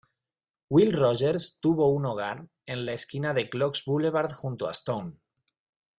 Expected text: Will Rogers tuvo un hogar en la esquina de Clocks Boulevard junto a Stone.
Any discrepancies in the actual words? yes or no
no